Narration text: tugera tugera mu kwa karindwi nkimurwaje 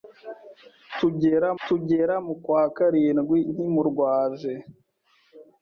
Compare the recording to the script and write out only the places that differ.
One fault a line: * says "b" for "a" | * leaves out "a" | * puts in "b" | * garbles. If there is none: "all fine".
all fine